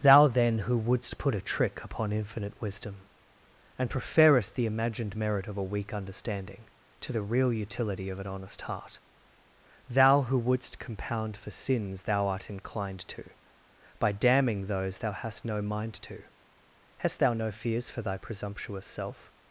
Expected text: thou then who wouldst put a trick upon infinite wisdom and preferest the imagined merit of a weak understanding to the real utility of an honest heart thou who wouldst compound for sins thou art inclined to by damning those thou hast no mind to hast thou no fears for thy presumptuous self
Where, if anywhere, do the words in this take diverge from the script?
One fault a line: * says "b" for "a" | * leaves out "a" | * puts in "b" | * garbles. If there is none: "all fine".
all fine